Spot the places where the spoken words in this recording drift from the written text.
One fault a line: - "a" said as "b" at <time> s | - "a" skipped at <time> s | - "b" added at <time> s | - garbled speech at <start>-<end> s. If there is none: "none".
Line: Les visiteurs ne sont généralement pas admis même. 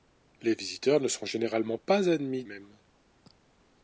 none